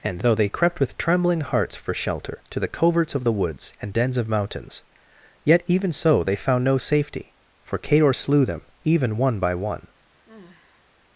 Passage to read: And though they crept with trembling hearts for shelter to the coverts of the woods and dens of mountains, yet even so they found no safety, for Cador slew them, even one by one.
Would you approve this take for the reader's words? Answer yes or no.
yes